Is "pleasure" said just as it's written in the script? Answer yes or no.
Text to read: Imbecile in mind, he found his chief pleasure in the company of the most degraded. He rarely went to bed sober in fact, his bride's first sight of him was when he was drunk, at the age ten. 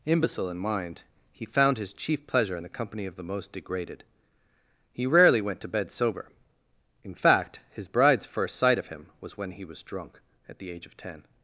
yes